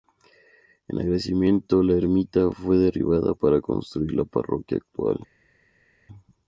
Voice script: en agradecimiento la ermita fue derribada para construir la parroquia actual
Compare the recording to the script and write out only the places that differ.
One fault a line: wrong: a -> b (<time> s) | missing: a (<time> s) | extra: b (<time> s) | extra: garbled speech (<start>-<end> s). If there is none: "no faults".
no faults